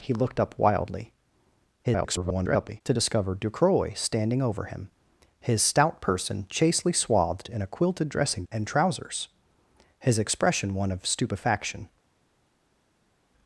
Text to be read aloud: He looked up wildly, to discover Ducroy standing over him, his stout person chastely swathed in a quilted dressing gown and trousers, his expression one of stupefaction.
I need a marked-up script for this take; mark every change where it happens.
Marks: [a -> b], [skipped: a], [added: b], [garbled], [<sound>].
He looked up wildly, [garbled] to discover Ducroy standing over him, his stout person chastely swathed in a quilted dressing [skipped: gown] and trousers, his expression one of stupefaction.